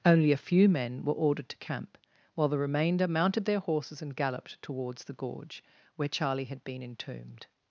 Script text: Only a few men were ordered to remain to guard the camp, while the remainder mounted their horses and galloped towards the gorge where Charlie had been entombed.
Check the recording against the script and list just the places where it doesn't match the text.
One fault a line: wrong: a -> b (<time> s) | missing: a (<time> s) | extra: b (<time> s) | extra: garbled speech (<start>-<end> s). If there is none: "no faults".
missing: remain to guard the (1.6 s)